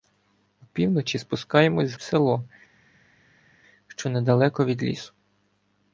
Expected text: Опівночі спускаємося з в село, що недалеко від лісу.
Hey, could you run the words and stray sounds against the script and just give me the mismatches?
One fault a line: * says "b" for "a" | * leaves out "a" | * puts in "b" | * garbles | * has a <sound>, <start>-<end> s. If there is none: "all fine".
all fine